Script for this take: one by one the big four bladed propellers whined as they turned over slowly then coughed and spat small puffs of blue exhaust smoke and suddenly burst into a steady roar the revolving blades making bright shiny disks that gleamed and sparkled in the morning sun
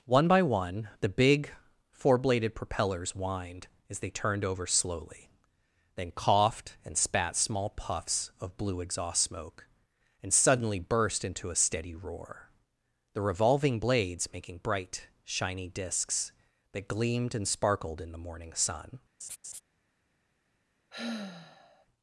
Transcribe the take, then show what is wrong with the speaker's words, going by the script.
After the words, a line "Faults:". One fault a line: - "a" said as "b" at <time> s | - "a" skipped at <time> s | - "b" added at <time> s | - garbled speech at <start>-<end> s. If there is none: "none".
one by one the big four bladed propellers whined as they turned over slowly then coughed and spat small puffs of blue exhaust smoke and suddenly burst into a steady roar the revolving blades making bright shiny disks that gleamed and sparkled in the morning sun
Faults:
none